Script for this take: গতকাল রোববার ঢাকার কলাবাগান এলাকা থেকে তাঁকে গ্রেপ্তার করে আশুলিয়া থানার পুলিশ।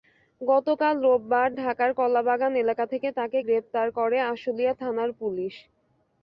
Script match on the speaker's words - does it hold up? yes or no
yes